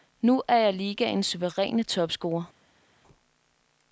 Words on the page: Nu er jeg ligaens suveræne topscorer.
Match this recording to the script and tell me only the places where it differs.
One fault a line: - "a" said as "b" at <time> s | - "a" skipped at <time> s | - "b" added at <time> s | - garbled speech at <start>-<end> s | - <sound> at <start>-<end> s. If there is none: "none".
none